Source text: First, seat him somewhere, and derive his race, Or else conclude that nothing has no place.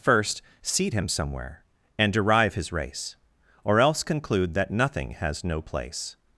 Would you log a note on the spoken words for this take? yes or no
no